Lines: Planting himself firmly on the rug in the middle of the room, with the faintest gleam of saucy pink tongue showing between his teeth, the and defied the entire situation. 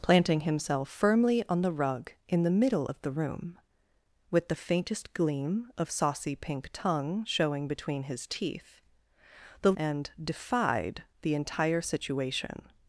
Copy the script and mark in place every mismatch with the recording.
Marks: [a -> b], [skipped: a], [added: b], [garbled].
Planting himself firmly on the rug in the middle of the room, with the faintest gleam of saucy pink tongue showing between his teeth, the and defied the entire situation.